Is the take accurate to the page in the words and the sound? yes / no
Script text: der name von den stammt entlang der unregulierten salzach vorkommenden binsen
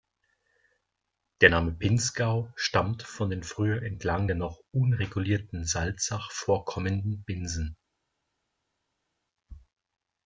no